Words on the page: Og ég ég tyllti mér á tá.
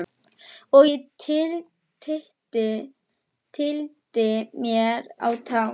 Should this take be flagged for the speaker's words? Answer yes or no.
yes